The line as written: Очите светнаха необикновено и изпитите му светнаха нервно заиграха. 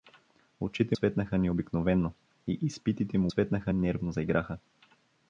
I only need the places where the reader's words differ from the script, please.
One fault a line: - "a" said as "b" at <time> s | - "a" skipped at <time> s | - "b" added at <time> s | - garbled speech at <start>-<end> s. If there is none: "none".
none